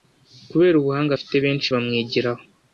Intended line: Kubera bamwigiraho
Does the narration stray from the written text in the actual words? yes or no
yes